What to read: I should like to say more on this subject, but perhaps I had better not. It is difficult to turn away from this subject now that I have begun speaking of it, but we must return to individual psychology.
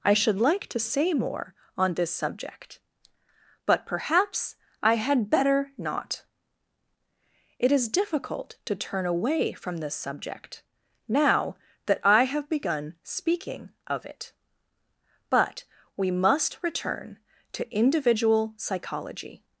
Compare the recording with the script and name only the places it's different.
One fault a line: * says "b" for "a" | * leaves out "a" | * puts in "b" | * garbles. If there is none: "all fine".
all fine